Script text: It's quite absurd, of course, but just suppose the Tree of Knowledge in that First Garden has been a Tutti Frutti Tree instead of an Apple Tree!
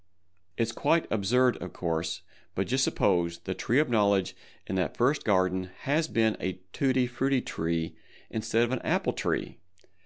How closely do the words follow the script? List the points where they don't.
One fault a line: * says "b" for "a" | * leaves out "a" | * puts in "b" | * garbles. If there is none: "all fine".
all fine